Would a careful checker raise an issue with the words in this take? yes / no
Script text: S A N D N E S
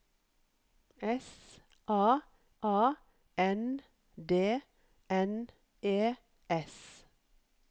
yes